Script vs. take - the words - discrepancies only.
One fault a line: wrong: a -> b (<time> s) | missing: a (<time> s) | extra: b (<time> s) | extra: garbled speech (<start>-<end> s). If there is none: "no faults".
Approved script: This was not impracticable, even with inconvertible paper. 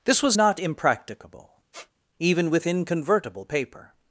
no faults